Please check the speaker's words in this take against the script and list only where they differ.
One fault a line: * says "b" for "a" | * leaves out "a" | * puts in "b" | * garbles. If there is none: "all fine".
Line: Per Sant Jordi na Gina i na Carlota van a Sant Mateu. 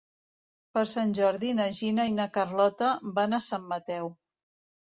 all fine